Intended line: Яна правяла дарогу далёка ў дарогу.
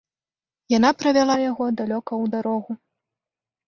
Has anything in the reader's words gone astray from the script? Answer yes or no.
yes